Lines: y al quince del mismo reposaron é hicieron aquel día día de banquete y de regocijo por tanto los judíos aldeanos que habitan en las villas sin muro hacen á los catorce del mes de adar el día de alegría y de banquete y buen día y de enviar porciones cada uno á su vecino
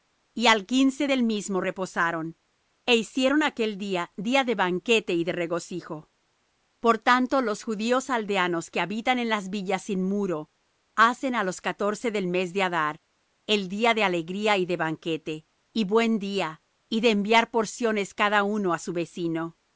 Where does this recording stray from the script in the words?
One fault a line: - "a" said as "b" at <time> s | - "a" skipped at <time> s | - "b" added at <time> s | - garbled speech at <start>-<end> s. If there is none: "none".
none